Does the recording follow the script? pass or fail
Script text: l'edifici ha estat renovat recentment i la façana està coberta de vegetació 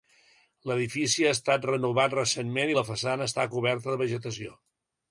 pass